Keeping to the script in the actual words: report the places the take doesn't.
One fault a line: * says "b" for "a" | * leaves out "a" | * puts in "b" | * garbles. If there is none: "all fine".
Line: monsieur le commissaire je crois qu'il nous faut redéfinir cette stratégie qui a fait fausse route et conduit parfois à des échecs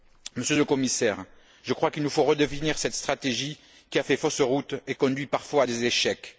all fine